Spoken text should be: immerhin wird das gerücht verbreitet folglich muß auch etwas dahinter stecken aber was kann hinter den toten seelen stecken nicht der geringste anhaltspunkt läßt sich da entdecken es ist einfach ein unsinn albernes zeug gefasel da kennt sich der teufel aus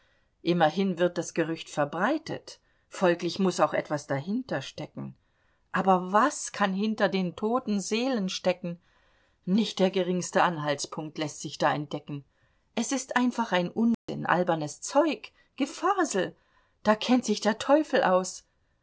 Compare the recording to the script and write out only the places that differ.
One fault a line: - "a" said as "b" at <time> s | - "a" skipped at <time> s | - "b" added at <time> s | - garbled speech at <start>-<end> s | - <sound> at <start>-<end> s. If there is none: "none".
- dropout at 13.9-14.1 s